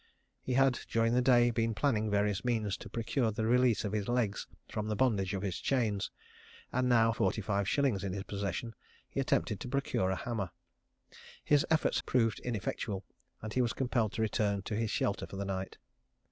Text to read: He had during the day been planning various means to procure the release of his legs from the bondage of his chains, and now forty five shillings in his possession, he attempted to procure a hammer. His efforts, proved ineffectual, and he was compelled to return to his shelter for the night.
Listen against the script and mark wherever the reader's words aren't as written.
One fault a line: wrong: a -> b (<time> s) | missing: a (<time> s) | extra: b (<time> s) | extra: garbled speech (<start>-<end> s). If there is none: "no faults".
no faults